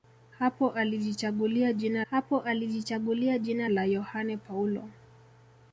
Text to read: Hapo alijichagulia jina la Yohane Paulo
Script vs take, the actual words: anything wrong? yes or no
yes